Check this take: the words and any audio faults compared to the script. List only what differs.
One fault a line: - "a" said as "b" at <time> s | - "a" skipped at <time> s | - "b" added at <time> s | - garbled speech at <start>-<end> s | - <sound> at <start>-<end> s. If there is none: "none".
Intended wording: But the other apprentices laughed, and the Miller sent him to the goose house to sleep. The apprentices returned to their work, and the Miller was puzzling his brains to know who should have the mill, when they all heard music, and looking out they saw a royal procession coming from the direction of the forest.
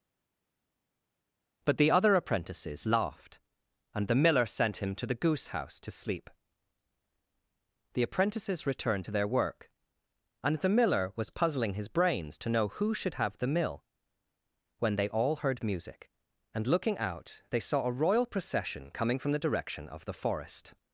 none